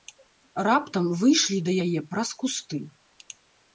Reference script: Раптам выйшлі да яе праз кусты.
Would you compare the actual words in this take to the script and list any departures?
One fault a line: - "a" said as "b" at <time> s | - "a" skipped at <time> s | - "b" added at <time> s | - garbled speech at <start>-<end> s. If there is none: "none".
none